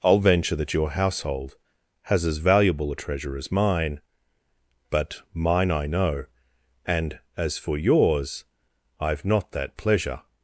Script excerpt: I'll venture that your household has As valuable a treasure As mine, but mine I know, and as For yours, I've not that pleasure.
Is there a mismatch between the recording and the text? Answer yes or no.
no